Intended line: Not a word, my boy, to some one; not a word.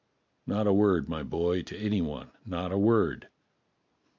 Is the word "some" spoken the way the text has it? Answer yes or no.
no